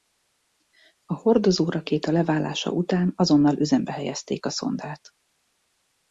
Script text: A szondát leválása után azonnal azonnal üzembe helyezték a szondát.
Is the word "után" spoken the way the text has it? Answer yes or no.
yes